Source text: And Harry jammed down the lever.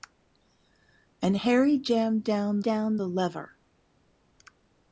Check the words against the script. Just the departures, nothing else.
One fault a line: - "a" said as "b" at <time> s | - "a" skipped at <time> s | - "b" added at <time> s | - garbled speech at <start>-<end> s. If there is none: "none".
- "down" added at 2.6 s